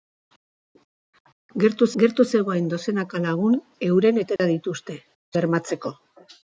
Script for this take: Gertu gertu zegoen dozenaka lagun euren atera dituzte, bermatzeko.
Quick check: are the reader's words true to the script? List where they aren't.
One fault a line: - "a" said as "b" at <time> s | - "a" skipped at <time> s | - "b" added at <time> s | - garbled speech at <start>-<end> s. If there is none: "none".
none